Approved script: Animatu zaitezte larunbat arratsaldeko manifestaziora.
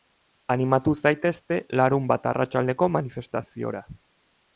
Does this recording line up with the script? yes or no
yes